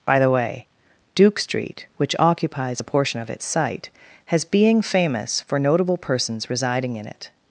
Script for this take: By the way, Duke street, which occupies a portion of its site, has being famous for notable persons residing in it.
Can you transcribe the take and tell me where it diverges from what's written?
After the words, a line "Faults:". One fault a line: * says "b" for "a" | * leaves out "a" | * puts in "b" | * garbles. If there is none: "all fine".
By the way, Duke street, which occupies a portion of its site, has being famous for notable persons residing in it.
Faults:
all fine